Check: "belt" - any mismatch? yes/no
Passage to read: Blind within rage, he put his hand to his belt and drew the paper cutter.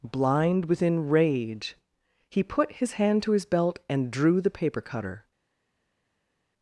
no